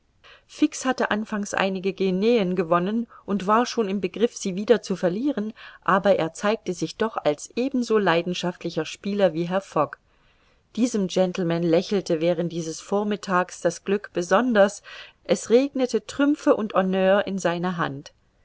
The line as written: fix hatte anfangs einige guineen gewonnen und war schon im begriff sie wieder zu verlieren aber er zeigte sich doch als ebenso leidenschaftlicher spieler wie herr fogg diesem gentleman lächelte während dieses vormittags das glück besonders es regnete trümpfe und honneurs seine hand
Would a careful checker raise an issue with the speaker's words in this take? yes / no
yes